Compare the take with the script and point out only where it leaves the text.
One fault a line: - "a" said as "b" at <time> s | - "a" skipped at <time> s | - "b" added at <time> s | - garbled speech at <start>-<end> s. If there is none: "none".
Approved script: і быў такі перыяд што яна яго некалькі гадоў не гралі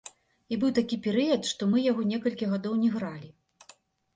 - "яна" said as "мы" at 1.7 s